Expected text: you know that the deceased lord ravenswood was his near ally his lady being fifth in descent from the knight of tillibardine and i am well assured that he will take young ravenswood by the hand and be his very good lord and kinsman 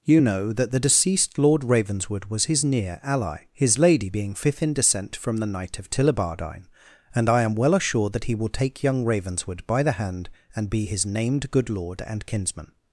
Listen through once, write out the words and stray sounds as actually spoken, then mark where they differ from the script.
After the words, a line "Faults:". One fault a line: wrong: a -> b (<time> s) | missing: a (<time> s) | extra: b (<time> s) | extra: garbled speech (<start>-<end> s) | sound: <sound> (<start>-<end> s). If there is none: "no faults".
you know that the deceased lord ravenswood was his near ally his lady being fifth in descent from the knight of tillibardine and i am well assured that he will take young ravenswood by the hand and be his named good lord and kinsman
Faults:
wrong: very -> named (11.0 s)